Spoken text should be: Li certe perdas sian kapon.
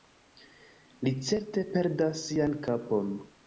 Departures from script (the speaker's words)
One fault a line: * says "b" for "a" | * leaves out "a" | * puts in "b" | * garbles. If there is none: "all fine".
all fine